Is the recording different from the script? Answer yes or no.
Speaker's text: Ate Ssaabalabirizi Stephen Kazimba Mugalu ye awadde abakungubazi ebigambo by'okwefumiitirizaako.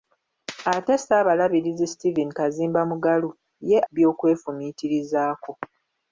yes